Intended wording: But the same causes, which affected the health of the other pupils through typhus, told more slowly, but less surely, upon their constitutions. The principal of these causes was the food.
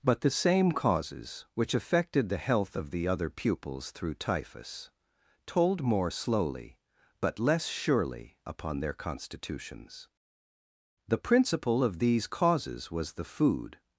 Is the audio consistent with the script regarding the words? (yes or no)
yes